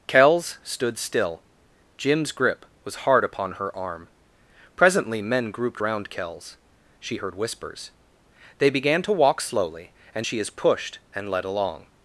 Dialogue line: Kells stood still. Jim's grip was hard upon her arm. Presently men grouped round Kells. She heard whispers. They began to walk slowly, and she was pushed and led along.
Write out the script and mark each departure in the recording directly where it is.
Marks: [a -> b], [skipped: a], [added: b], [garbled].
Kells stood still. Jim's grip was hard upon her arm. Presently men grouped round Kells. She heard whispers. They began to walk slowly, and she [was -> is] pushed and led along.